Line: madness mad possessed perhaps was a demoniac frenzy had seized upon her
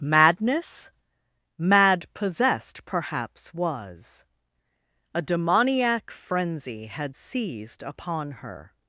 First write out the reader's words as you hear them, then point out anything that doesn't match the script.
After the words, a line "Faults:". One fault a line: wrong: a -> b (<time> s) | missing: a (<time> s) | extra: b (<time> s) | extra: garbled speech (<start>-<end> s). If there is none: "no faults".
madness mad possessed perhaps was a demoniac frenzy had seized upon her
Faults:
no faults